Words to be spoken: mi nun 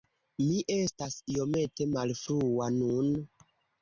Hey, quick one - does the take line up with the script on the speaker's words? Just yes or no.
no